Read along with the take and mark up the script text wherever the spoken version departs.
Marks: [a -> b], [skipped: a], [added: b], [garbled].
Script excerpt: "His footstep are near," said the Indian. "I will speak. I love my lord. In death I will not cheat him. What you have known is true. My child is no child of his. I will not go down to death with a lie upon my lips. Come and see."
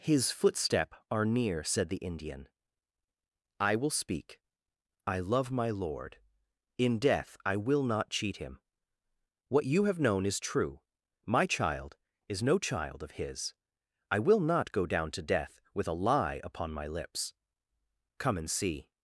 "His footstep are near," said the Indian. "I will speak. I love my lord. In death I will not cheat him. What you have known is true. My child is no child of his. I will not go down to death with a lie upon my lips. Come and see."